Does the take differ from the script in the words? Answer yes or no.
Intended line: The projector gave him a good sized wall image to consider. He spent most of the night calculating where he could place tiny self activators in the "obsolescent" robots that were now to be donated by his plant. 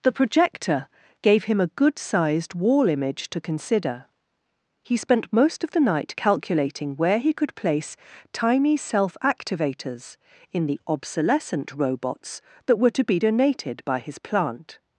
yes